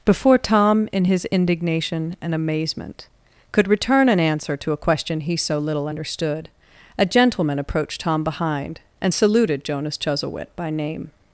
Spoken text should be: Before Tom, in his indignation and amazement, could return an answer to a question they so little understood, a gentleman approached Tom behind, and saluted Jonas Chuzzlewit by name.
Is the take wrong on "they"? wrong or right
wrong